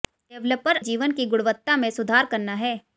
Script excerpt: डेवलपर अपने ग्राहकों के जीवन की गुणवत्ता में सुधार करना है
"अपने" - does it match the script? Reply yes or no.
no